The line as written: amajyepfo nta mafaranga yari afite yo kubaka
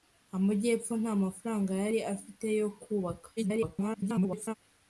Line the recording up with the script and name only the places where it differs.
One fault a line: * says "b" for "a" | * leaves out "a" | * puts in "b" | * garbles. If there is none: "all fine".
* garbles